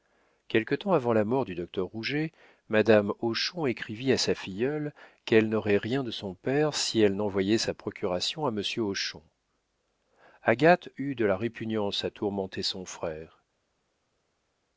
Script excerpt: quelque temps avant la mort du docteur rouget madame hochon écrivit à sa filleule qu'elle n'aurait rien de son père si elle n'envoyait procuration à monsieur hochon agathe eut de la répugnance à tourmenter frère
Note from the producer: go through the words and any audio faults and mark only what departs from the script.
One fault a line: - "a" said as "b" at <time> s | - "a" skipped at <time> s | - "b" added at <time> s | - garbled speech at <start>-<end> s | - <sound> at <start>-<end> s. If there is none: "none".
- "sa" added at 7.6 s
- "son" added at 12.6 s